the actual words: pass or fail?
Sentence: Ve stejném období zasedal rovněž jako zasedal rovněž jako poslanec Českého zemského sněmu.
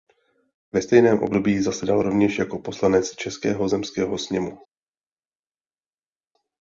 fail